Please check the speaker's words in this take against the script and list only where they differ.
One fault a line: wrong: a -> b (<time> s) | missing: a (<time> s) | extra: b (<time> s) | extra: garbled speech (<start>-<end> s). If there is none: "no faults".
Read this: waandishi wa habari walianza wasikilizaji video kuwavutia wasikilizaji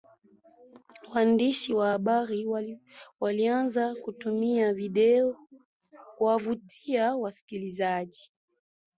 wrong: wasikilizaji -> kutumia (3.9 s)